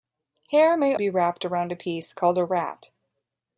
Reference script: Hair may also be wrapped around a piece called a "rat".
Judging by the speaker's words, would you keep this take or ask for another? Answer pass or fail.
fail